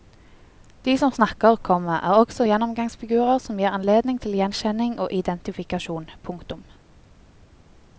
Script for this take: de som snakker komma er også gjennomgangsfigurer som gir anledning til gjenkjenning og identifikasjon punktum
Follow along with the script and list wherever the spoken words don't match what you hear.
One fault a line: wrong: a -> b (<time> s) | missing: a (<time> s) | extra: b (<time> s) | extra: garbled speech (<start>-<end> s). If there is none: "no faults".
no faults